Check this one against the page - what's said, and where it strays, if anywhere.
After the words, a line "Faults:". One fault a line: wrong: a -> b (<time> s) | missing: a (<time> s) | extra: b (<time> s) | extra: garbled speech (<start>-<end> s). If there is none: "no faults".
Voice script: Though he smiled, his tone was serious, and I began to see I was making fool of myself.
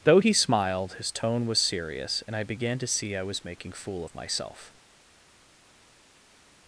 Though he smiled, his tone was serious, and I began to see I was making fool of myself.
Faults:
no faults